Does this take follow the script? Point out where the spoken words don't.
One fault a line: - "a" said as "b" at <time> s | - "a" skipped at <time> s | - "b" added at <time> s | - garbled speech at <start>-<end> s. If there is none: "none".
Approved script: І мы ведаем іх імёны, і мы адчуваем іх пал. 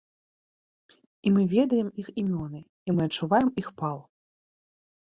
none